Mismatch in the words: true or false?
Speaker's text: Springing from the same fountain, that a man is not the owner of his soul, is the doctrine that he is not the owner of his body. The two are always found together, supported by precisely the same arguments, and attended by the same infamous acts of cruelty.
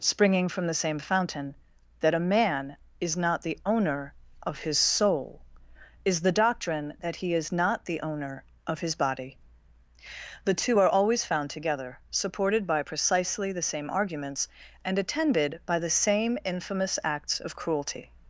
false